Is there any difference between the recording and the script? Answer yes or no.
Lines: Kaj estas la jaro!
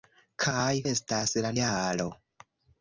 no